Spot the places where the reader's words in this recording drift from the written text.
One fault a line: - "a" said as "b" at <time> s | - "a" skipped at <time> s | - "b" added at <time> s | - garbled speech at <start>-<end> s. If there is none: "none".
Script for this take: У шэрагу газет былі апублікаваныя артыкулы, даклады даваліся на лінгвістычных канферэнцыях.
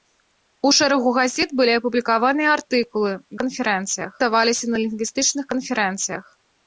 - "даклады" said as "канферэнцыях" at 3.4 s